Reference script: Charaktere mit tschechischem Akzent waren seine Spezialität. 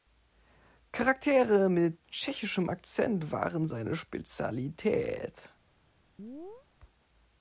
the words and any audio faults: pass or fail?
fail